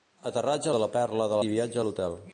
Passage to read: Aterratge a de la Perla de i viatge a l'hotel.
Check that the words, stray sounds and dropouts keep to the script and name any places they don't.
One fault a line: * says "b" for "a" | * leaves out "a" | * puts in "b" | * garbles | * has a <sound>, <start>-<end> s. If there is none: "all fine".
all fine